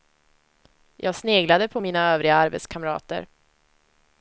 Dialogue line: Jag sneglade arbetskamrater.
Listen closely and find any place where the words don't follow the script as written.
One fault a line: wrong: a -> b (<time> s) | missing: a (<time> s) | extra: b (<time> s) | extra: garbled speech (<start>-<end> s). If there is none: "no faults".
extra: på mina övriga (1.7 s)